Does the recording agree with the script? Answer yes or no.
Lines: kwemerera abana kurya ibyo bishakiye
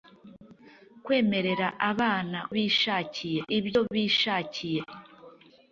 no